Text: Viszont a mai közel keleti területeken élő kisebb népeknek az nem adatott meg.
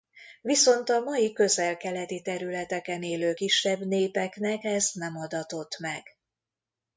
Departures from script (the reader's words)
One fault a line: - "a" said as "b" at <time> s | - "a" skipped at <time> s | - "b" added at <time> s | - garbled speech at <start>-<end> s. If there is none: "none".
- "az" said as "ez" at 4.6 s